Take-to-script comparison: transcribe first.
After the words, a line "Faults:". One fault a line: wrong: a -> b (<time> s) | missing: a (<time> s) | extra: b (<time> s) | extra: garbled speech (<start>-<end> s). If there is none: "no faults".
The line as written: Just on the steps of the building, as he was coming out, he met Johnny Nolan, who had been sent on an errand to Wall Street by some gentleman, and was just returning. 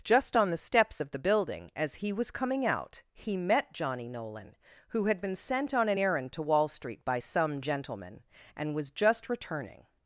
Just on the steps of the building, as he was coming out, he met Johnny Nolan, who had been sent on an errand to Wall Street by some gentleman, and was just returning.
Faults:
no faults